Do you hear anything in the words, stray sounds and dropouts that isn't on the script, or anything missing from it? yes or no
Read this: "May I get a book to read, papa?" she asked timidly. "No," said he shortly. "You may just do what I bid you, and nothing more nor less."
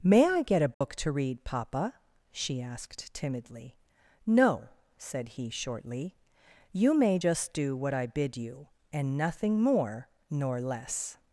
yes